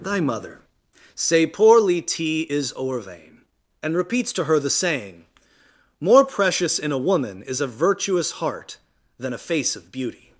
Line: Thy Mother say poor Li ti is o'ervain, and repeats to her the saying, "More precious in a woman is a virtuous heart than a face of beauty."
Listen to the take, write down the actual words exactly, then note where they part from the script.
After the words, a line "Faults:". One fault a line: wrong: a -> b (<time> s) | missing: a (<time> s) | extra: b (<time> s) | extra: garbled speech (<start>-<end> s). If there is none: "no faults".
Thy Mother say poor Li ti is o'ervain, and repeats to her the saying, "More precious in a woman is a virtuous heart than a face of beauty."
Faults:
no faults